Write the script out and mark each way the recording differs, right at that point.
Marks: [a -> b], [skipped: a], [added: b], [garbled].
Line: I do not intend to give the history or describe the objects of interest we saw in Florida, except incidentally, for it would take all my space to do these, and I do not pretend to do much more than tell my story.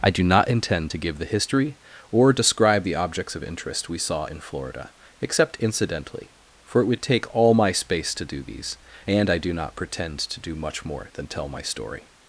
I do not intend to give the history or describe the objects of interest we saw in Florida, except incidentally, for it would take all my space to do these, and I do not pretend to do much more than tell my story.